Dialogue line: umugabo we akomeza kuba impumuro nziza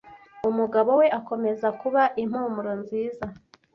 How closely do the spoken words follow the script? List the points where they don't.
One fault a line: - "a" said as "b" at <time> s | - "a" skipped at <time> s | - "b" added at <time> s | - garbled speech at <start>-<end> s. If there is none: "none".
none